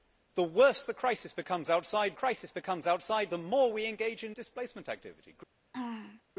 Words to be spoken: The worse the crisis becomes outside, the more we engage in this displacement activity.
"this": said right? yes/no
no